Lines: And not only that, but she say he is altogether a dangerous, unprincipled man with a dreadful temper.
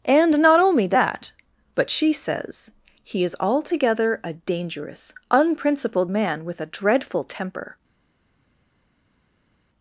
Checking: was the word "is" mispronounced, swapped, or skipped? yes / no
no